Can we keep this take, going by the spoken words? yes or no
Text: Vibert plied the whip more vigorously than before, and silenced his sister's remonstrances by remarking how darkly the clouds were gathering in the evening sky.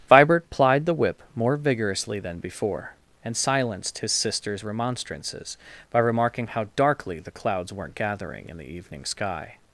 no